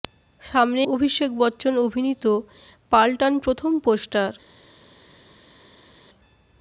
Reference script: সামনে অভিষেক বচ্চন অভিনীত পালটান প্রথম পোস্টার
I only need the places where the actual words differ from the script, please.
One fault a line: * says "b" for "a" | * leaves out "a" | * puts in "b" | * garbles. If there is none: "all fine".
all fine